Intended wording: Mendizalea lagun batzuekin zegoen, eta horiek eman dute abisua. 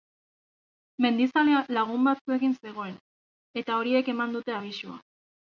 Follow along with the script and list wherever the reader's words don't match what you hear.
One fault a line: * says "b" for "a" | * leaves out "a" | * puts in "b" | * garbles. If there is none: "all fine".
all fine